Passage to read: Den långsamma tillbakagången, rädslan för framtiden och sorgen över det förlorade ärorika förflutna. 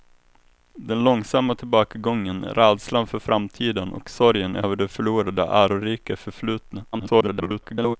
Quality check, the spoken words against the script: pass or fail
fail